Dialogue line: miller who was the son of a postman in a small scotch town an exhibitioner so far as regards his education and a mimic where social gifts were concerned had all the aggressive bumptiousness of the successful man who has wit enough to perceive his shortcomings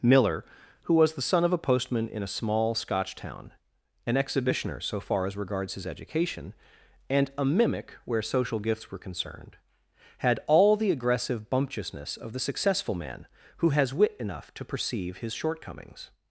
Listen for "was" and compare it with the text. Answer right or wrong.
right